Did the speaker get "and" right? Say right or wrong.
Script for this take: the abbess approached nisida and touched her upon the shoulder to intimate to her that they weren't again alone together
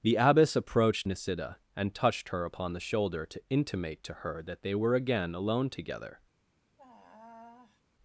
right